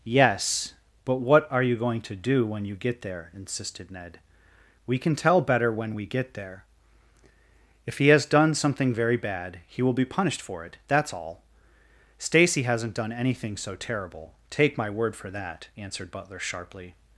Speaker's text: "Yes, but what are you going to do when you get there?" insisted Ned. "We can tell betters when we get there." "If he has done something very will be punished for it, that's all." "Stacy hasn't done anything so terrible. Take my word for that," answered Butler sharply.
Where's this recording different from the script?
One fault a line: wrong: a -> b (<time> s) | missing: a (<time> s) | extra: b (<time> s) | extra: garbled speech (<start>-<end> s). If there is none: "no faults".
wrong: betters -> better (5.4 s)
extra: bad he (9.2 s)